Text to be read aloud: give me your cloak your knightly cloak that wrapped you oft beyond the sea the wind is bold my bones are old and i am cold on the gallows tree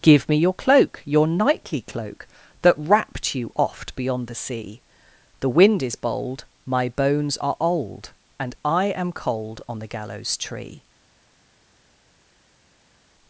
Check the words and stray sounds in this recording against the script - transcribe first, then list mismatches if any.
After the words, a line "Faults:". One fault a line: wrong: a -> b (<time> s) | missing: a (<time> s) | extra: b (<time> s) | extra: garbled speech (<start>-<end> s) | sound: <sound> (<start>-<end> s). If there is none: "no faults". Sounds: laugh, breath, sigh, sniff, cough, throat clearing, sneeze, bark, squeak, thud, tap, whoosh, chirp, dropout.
give me your cloak your knightly cloak that wrapped you oft beyond the sea the wind is bold my bones are old and i am cold on the gallows tree
Faults:
no faults